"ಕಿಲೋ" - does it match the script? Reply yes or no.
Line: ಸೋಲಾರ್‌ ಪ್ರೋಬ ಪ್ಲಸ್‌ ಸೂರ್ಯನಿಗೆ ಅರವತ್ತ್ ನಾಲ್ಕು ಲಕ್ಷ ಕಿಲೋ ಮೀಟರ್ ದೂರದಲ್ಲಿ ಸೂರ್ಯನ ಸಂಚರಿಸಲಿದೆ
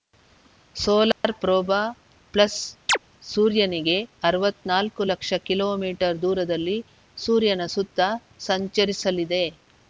yes